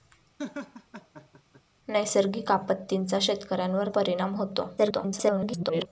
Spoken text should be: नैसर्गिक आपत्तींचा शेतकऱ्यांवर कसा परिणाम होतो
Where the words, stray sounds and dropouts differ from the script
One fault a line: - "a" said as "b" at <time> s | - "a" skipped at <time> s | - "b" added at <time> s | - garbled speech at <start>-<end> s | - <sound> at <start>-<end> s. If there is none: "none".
- laugh at 0.4-1.6 s
- "कसा" skipped at 3.9 s
- garbled speech at 4.8-5.9 s